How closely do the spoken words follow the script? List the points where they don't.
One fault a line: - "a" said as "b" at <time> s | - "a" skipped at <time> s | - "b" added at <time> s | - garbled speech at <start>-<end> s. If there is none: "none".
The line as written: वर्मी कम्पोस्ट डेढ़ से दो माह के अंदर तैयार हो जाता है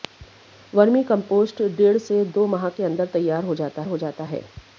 - "हो जाता" added at 3.9 s